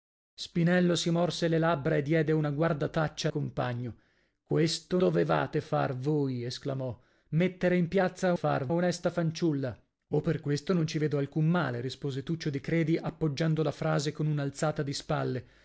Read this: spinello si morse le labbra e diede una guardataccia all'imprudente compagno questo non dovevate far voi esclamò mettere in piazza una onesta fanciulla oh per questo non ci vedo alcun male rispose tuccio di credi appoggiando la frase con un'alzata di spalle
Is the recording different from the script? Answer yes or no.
yes